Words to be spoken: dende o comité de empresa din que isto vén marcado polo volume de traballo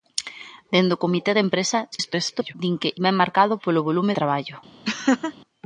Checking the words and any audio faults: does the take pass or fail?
fail